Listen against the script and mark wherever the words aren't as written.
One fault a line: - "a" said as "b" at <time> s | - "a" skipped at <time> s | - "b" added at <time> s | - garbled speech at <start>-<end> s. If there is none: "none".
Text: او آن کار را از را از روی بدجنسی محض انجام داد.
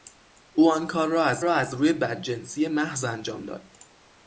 none